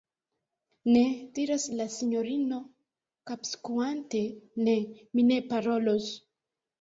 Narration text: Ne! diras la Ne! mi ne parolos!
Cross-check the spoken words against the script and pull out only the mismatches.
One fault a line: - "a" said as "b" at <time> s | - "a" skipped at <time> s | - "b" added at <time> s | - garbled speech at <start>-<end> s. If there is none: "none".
- "sinjorino kapskuante" added at 1.9 s